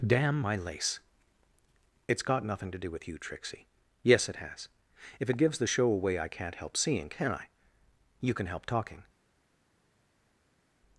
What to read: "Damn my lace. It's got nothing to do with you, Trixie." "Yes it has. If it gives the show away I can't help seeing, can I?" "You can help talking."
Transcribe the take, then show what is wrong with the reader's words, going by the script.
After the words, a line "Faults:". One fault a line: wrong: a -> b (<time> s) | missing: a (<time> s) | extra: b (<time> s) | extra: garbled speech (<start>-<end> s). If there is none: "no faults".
"Damn my lace. It's got nothing to do with you, Trixie." "Yes it has. If it gives the show away I can't help seeing, can I?" "You can help talking."
Faults:
no faults